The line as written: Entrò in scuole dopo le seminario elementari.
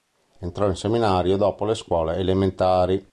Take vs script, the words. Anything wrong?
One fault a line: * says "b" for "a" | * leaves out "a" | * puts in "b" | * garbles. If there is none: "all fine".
* says "seminario" for "scuole"
* says "scuole" for "seminario"